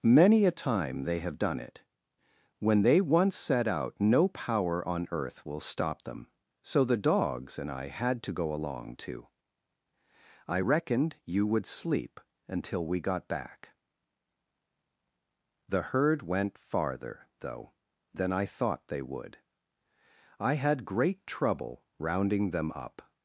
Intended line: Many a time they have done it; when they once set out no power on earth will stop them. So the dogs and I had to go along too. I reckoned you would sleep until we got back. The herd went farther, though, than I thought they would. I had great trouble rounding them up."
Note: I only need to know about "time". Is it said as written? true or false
true